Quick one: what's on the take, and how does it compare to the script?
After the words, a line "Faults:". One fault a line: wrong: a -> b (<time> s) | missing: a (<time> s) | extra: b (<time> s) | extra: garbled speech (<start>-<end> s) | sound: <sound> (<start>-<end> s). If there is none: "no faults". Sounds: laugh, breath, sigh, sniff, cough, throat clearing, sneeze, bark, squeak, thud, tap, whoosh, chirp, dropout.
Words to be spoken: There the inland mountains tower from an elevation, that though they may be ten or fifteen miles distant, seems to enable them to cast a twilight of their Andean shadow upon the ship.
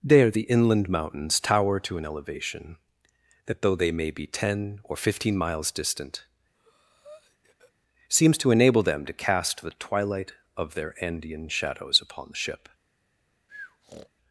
There the inland mountains tower to an elevation, that though they may be ten or fifteen miles distant, seems to enable them to cast the twilight of their Andean shadows upon the ship.
Faults:
wrong: from -> to (1.8 s)
sound: breath (6.5-7.7 s)
wrong: a -> the (9.6 s)
wrong: shadow -> shadows (11.5 s)
sound: breath (13.5-14.1 s)